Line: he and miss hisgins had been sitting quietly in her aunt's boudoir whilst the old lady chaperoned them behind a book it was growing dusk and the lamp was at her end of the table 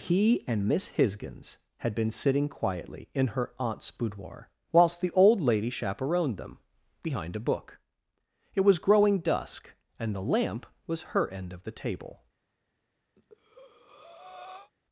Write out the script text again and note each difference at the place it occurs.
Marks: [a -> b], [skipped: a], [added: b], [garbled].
he and miss hisgins had been sitting quietly in her aunt's boudoir whilst the old lady chaperoned them behind a book it was growing dusk and the lamp was [skipped: at] her end of the table